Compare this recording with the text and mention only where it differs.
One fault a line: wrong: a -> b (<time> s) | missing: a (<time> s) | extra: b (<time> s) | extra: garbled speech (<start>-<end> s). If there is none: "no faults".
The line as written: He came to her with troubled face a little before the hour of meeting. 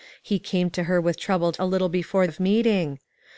missing: face (1.6 s)
missing: the hour (2.3 s)